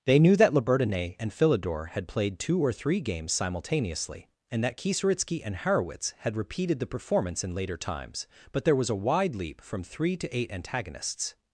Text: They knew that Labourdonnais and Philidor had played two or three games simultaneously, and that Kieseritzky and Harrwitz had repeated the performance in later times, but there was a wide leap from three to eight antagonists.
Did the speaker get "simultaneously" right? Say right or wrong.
right